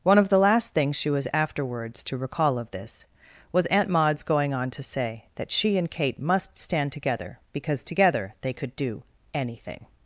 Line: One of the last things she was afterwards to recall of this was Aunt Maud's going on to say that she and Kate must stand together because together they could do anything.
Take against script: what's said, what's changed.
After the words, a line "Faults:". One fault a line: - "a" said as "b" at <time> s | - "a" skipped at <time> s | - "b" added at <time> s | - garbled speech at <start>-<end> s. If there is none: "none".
One of the last things she was afterwards to recall of this was Aunt Maud's going on to say that she and Kate must stand together because together they could do anything.
Faults:
none